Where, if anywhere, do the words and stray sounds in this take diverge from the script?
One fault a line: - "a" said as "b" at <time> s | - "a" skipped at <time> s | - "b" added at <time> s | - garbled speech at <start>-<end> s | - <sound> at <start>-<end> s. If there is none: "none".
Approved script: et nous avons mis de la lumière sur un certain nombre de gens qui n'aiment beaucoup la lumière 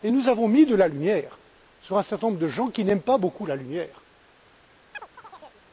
- "pas" added at 3.0 s
- chirp at 4.9-5.6 s